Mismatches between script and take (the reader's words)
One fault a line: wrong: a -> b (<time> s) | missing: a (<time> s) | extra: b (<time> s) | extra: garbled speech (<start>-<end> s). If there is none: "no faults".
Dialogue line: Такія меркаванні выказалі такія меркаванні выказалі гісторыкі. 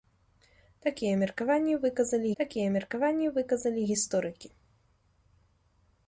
no faults